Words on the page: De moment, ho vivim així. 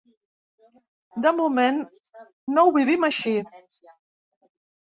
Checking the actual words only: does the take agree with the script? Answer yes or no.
no